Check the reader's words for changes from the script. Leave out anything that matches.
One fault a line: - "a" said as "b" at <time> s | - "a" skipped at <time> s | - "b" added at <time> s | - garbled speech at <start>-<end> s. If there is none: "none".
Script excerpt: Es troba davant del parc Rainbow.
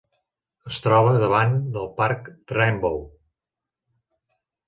none